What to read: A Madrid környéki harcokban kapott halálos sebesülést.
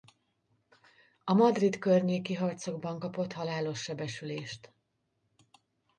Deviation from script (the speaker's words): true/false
false